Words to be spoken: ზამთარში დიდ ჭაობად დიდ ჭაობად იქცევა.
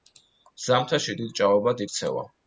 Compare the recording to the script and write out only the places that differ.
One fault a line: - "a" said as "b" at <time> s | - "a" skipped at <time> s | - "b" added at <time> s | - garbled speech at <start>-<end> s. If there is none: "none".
- "დიდ ჭაობად" skipped at 1.8 s